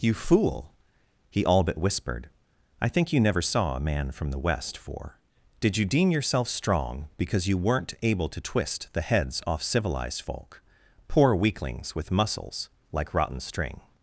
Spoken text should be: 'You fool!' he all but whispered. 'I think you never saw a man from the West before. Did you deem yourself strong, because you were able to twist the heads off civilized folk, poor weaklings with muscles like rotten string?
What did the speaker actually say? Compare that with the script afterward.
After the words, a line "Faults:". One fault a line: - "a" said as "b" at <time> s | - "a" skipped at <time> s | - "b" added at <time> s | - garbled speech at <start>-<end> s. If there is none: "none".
'You fool!' he all but whispered. 'I think you never saw a man from the West for. Did you deem yourself strong, because you weren't able to twist the heads off civilized folk, poor weaklings with muscles like rotten string?
Faults:
- "before" said as "for" at 4.8 s
- "were" said as "weren't" at 7.5 s